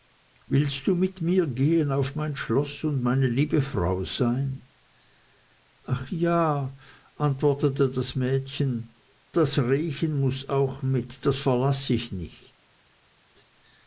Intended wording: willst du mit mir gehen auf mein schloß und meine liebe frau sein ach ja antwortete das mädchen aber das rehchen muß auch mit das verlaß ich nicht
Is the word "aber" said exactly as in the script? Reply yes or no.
no